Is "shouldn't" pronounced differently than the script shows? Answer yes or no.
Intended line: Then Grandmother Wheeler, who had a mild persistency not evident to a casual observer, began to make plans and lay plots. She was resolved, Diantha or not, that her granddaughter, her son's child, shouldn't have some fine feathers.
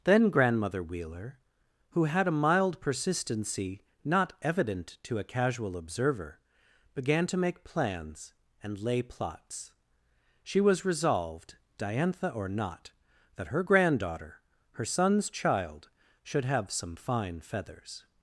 yes